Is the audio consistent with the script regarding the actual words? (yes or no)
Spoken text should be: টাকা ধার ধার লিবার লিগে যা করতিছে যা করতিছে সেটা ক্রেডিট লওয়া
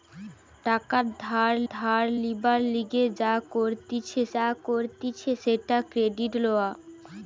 yes